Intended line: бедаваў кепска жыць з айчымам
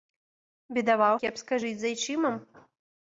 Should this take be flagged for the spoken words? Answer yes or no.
no